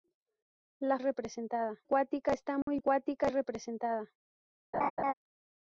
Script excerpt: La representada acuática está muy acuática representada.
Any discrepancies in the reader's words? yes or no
no